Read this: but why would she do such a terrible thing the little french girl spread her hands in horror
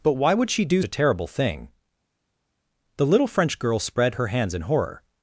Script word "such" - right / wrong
wrong